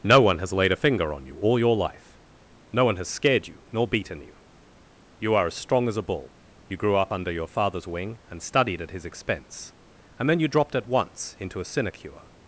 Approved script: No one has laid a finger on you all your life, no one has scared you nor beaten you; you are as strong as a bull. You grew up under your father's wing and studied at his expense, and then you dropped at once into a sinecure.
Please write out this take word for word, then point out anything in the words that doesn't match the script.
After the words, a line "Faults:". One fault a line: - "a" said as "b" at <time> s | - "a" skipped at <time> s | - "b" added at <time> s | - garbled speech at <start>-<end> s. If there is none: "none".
No one has laid a finger on you all your life, no one has scared you nor beaten you; you are as strong as a bull. You grew up under your father's wing and studied at his expense, and then you dropped at once into a sinecure.
Faults:
none